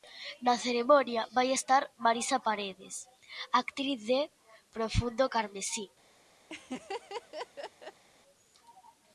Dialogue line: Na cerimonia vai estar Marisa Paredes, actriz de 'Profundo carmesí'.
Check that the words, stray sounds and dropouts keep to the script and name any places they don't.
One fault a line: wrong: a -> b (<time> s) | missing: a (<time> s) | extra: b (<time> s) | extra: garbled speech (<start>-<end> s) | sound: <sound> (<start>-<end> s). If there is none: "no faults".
sound: laugh (6.5-8.0 s)